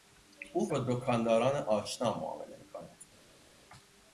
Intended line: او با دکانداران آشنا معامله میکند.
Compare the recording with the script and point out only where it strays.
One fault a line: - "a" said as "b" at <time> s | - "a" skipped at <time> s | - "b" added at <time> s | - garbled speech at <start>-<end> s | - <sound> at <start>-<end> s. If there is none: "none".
none